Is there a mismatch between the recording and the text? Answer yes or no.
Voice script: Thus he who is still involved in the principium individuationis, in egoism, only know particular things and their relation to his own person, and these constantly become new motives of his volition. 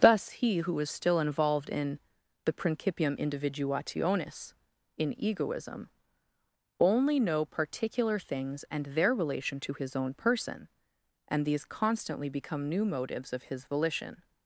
no